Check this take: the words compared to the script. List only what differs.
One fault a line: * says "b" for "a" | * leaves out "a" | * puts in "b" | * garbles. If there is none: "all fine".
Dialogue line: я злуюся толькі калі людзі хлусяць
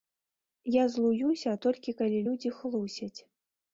all fine